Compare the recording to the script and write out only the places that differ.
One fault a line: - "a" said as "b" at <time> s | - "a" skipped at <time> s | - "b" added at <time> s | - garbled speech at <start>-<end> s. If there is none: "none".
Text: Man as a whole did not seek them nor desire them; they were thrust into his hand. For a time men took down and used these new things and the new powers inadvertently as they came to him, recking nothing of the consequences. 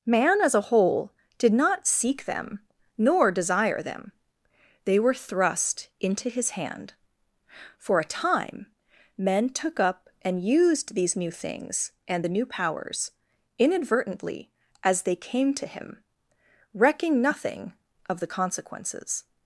- "down" said as "up" at 9.8 s